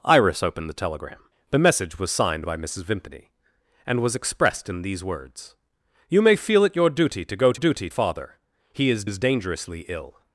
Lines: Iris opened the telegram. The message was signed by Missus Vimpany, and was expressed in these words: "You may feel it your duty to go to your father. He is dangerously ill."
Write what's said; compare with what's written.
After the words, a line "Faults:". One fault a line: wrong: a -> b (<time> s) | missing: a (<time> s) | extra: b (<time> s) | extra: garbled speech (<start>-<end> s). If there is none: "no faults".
Iris opened the telegram. The message was signed by Missus Vimpany, and was expressed in these words: "You may feel it your duty to go to duty father. He is is dangerously ill."
Faults:
wrong: your -> duty (7.5 s)
extra: is (9.0 s)